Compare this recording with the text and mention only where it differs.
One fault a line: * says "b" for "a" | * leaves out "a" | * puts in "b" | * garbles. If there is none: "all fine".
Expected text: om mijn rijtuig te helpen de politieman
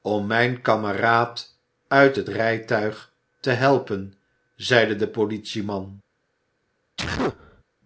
* puts in "kameraad uit het"
* puts in "zeide"